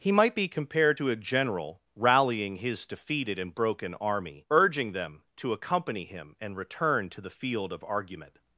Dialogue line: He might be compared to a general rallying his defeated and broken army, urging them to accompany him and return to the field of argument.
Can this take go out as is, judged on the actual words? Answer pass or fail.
pass